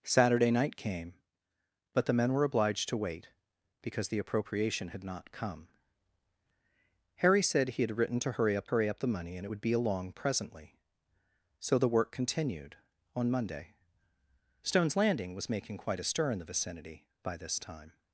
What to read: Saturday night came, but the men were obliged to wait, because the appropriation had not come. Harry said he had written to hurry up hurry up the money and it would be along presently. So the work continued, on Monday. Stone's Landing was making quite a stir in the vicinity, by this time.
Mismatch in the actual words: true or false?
false